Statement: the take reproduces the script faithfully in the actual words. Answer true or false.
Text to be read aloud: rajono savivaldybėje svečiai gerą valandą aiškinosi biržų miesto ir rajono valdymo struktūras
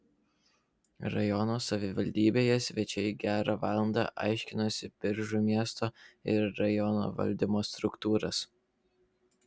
true